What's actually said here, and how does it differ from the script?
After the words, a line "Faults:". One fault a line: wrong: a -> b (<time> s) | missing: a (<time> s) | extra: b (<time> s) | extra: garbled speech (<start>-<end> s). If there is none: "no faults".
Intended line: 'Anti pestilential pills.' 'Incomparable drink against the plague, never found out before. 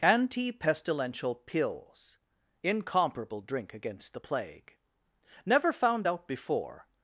'Anti pestilential pills.' 'Incomparable drink against the plague, never found out before.
Faults:
no faults